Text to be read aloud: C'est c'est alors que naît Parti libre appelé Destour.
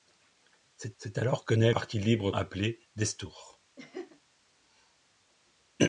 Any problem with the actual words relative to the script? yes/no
no